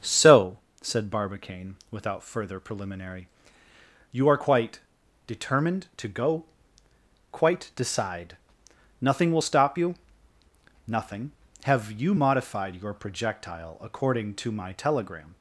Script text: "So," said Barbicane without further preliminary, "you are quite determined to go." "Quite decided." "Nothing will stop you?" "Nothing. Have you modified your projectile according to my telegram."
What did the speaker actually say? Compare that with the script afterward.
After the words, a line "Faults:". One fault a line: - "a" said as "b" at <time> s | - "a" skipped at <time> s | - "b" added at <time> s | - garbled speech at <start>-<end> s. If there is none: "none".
"So," said Barbicane without further preliminary, "you are quite determined to go." "Quite decide." "Nothing will stop you?" "Nothing. Have you modified your projectile according to my telegram."
Faults:
- "decided" said as "decide" at 7.8 s